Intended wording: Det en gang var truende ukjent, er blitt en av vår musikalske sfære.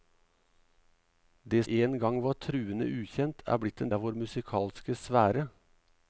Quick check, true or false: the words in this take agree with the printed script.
true